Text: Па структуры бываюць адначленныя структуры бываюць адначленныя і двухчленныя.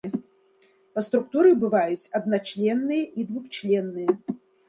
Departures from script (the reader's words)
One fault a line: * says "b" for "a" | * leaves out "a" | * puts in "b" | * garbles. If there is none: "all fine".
* leaves out "структуры бываюць адначленныя"